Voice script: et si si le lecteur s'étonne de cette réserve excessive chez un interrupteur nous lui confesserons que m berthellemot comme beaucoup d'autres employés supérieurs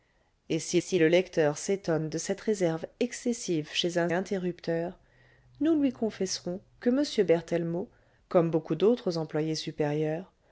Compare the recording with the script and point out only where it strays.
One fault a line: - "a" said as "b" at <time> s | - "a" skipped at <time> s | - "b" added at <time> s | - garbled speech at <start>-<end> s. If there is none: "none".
none